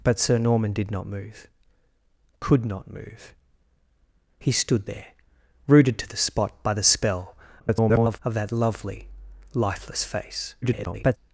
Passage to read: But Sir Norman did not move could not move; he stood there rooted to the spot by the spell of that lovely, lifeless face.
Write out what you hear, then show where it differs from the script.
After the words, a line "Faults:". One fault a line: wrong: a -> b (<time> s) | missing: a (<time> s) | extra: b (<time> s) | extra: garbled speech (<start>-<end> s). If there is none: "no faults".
But Sir Norman did not move could not move; he stood there rooted to the spot by the spell [garbled] of that lovely, lifeless face. [garbled]
Faults:
extra: garbled speech (7.6-8.2 s)
extra: garbled speech (10.6-11.2 s)